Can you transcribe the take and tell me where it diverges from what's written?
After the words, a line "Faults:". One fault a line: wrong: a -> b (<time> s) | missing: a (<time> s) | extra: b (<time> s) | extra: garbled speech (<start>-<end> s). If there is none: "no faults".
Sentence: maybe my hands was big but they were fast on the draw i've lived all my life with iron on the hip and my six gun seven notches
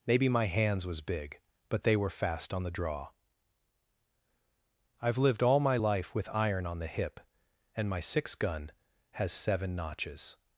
maybe my hands was big but they were fast on the draw i've lived all my life with iron on the hip and my six gun has seven notches
Faults:
extra: has (9.1 s)